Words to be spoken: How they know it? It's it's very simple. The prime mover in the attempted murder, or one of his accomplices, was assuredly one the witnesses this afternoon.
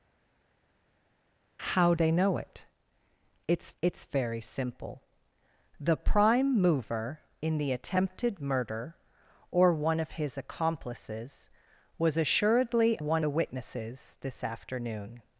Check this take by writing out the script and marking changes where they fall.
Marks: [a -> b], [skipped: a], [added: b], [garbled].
How they know it? It's it's very simple. The prime mover in the attempted murder, or one of his accomplices, was assuredly one the witnesses this afternoon.